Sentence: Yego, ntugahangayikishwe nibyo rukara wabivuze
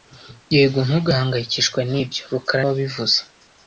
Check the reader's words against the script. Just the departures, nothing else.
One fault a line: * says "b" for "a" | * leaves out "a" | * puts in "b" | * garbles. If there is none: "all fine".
all fine